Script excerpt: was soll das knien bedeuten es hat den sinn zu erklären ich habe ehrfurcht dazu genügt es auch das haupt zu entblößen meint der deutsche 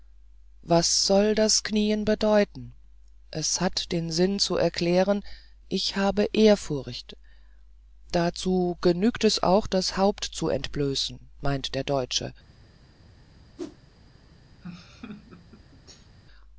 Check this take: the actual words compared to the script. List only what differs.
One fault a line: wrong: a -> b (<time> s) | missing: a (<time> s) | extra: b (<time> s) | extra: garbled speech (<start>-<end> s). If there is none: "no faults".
no faults